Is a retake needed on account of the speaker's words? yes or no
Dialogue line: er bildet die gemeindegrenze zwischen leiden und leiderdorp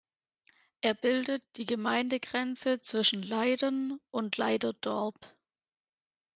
no